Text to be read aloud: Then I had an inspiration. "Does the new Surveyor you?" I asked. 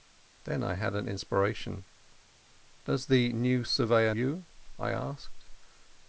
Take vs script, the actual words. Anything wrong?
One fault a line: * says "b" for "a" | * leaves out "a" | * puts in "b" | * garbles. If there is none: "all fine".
all fine